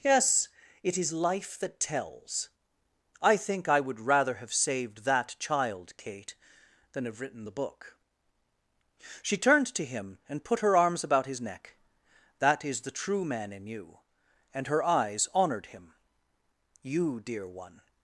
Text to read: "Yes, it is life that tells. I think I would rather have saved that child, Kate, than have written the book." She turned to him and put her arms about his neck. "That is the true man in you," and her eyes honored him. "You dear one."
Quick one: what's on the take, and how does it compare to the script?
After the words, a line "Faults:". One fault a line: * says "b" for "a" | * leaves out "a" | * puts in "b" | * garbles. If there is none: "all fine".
"Yes, it is life that tells. I think I would rather have saved that child, Kate, than have written the book." She turned to him and put her arms about his neck. "That is the true man in you," and her eyes honored him. "You dear one."
Faults:
all fine